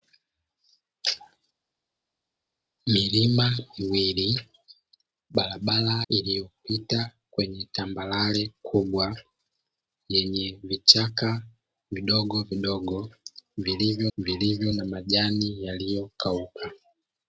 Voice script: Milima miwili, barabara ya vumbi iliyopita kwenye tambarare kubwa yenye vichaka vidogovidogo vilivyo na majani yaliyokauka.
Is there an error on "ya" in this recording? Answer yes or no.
yes